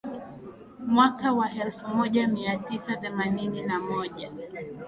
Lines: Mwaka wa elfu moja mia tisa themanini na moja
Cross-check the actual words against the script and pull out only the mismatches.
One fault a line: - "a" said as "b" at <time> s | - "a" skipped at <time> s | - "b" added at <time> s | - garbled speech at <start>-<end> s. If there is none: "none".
none